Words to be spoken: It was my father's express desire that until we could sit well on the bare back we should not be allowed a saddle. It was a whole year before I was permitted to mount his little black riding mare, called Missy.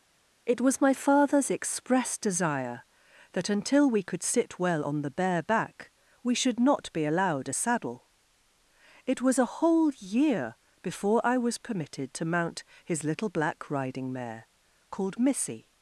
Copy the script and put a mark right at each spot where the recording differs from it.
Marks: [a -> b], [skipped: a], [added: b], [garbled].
It was my father's express desire that until we could sit well on the bare back we should not be allowed a saddle. It was a whole year before I was permitted to mount his little black riding mare, called Missy.